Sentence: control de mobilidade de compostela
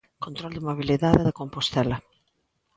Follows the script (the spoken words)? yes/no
yes